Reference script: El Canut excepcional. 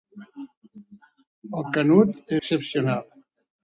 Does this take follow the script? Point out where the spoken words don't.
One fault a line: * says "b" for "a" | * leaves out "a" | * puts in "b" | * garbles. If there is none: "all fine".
all fine